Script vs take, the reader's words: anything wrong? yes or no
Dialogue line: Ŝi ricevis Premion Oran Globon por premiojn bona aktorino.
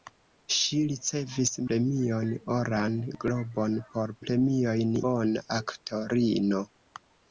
no